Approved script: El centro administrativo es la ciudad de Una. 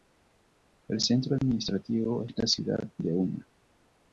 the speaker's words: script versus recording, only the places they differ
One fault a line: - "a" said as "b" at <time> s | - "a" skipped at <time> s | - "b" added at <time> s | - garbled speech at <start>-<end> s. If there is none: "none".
none